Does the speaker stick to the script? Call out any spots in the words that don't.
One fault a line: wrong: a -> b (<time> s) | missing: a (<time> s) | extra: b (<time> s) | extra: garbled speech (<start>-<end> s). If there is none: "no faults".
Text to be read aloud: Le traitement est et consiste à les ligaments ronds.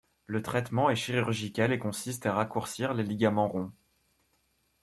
extra: chirurgical (0.9 s)
extra: raccourcir (2.3 s)